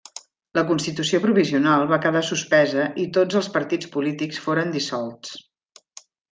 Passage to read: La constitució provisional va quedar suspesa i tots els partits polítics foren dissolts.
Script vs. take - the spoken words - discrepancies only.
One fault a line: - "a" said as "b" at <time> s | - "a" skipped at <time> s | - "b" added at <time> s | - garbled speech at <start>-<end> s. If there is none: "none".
none